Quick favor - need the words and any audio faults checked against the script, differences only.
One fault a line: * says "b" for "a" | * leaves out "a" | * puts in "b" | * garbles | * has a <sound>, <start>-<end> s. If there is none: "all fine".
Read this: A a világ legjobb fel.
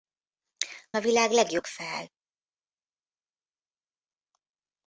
all fine